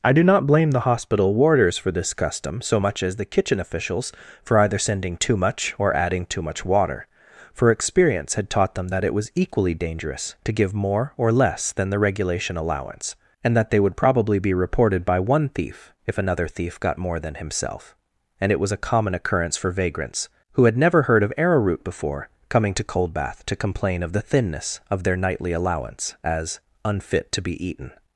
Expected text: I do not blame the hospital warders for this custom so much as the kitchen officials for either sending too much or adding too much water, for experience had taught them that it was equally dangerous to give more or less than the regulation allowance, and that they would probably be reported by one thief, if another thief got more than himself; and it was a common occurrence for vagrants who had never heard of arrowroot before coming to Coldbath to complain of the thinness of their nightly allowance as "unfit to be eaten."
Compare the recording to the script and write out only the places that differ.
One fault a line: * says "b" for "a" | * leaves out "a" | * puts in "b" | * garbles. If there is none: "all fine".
all fine